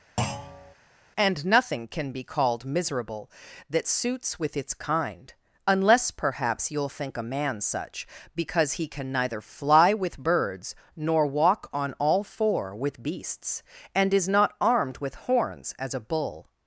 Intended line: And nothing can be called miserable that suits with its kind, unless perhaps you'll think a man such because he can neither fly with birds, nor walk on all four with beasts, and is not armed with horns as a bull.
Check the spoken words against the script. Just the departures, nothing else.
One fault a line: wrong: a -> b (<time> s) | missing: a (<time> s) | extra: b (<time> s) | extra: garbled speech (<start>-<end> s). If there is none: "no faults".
no faults